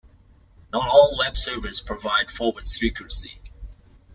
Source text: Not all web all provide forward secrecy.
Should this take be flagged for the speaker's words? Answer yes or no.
yes